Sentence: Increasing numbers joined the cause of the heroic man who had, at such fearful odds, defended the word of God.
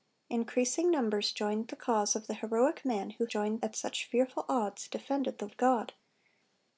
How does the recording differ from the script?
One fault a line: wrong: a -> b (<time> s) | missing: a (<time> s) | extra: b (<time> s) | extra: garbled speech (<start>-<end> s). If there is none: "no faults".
wrong: had -> joined (3.3 s)
missing: word (5.5 s)